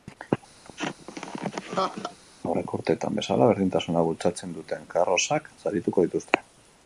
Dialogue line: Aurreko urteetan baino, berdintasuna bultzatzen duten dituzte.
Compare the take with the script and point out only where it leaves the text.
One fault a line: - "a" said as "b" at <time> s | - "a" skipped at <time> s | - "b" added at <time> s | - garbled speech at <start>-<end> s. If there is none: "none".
- "baino" said as "bezala" at 3.2 s
- "karrozak sarituko" added at 5.0 s